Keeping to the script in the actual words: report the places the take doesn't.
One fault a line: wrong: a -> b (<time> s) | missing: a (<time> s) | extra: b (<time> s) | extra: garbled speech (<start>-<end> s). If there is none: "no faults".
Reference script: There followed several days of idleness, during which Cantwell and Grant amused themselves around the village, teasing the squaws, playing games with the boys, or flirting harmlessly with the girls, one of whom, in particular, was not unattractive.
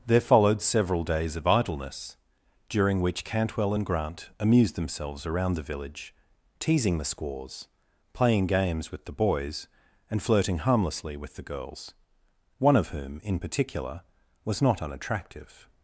wrong: or -> and (10.1 s)